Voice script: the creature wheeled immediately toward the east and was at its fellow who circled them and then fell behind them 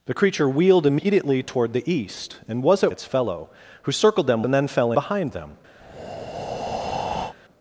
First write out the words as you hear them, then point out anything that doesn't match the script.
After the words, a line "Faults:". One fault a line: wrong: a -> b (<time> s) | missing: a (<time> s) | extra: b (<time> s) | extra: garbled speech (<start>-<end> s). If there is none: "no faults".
the creature wheeled immediately toward the east and was at its fellow who circled them and then fell behind them
Faults:
no faults